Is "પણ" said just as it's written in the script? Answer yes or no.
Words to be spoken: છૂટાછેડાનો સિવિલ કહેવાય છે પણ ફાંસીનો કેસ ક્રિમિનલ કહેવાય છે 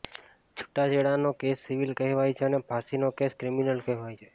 no